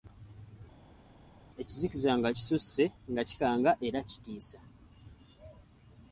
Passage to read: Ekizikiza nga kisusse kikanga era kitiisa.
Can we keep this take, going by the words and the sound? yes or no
no